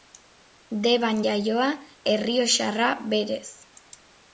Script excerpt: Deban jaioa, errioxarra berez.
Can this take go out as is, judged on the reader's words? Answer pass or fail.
pass